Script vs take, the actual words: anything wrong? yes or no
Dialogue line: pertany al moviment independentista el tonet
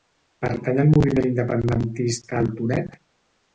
no